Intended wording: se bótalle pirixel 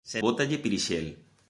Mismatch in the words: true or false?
false